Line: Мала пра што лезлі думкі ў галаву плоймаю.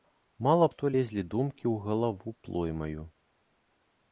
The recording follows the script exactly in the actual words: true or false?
false